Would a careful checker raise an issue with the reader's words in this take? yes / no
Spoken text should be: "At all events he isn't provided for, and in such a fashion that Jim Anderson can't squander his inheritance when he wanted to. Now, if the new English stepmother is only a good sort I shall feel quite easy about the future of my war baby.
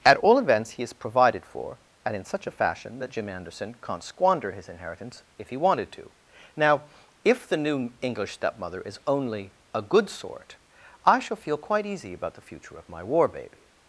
yes